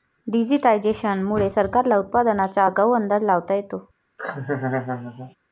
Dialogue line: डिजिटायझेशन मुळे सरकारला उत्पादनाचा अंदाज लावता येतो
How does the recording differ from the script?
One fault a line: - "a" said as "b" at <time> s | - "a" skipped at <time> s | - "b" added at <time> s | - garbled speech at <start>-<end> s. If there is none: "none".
- "आगाऊ" added at 2.6 s